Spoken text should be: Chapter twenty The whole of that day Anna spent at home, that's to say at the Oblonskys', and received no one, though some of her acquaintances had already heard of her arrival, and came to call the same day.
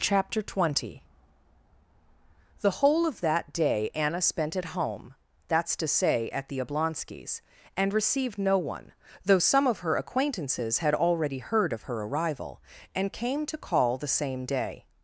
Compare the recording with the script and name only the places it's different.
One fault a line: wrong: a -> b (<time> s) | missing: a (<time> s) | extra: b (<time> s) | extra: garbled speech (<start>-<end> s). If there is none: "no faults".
no faults